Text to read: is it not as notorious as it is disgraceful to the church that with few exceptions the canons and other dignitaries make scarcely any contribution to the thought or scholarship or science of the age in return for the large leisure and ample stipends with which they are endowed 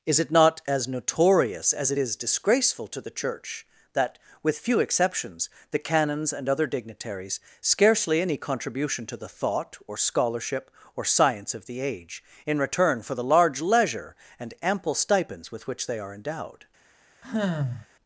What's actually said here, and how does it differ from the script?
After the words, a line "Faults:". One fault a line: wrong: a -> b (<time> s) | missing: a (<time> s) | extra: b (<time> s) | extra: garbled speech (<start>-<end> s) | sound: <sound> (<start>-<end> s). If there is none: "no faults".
is it not as notorious as it is disgraceful to the church that with few exceptions the canons and other dignitaries scarcely any contribution to the thought or scholarship or science of the age in return for the large leisure and ample stipends with which they are endowed
Faults:
missing: make (7.4 s)
sound: sigh (17.2-17.9 s)